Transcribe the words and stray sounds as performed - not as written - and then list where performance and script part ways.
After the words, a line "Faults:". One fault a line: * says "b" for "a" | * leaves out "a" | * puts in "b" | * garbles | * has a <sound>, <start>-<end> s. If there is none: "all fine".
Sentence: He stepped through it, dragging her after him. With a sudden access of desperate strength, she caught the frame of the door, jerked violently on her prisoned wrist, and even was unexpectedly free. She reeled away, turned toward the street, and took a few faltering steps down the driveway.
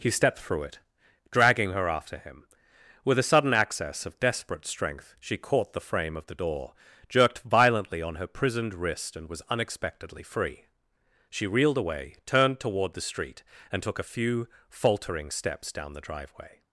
He stepped through it, dragging her after him. With a sudden access of desperate strength, she caught the frame of the door, jerked violently on her prisoned wrist, and was unexpectedly free. She reeled away, turned toward the street, and took a few faltering steps down the driveway.
Faults:
* leaves out "even"